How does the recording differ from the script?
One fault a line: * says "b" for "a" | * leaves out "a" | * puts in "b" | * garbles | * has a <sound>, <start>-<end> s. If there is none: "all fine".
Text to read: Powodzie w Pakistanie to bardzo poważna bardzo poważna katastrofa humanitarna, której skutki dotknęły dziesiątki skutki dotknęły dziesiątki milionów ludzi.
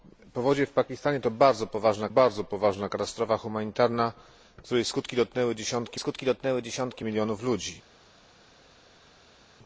all fine